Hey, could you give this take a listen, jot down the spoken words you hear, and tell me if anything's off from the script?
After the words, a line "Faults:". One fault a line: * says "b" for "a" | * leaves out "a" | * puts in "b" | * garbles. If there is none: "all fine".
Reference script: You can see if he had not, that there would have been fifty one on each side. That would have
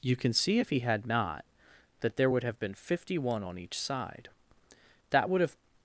You can see if he had not, that there would have been fifty one on each side. That would have
Faults:
all fine